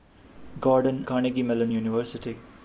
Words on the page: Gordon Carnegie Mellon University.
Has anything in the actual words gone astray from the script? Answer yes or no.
no